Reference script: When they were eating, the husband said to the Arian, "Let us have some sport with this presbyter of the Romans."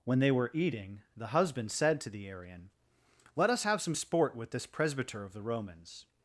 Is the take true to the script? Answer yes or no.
yes